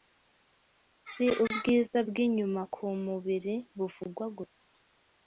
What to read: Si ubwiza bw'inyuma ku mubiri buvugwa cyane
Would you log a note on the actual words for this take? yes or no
yes